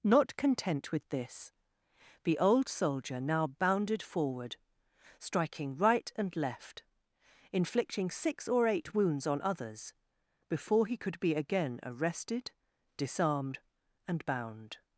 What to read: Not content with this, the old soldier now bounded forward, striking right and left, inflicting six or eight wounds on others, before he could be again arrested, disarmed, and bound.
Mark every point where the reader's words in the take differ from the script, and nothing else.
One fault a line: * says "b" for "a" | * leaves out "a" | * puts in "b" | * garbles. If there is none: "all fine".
all fine